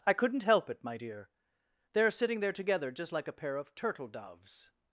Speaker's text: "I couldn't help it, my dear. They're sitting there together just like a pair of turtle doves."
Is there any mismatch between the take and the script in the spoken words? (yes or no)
no